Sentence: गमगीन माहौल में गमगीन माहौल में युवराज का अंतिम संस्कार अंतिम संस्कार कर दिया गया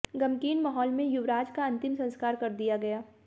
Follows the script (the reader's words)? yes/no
no